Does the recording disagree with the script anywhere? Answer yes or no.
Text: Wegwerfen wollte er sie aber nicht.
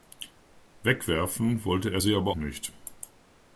no